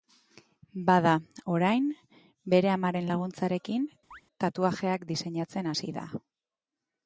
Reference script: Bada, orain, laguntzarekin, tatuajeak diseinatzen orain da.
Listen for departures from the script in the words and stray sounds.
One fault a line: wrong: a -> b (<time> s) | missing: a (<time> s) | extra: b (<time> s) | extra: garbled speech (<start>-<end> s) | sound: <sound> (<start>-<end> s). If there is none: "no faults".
extra: bere amaren (2.5 s)
sound: chirp (4.1-4.2 s)
wrong: orain -> hasi (5.7 s)